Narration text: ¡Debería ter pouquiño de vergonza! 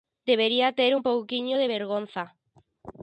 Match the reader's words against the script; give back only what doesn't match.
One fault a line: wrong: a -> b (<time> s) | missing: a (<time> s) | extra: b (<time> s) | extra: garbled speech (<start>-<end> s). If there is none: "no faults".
extra: un (0.9 s)